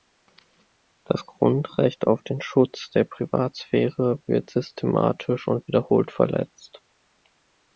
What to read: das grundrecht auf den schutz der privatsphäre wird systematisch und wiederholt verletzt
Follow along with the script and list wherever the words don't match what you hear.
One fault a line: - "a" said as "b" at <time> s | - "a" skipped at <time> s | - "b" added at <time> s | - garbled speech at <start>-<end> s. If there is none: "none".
none